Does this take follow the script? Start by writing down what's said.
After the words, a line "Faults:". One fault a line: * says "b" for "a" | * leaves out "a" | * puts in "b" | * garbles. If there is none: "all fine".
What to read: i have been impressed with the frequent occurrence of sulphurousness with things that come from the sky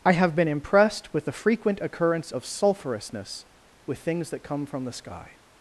i have been impressed with the frequent occurrence of sulphurousness with things that come from the sky
Faults:
all fine